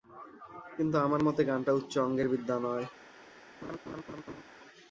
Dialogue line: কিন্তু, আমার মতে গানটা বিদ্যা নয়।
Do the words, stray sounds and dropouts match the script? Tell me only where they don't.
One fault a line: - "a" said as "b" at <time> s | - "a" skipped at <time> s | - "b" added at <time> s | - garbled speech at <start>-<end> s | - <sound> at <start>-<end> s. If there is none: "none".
- "উচ্চ অঙ্গের" added at 1.7 s
- laugh at 3.6-4.4 s